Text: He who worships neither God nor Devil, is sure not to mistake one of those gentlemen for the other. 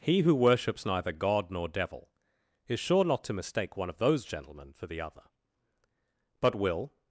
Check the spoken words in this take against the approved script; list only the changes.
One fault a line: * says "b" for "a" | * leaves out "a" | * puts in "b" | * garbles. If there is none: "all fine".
* puts in "But will"